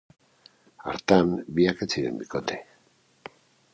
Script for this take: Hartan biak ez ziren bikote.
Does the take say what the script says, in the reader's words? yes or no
yes